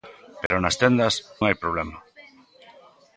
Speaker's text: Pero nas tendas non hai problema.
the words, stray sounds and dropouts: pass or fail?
fail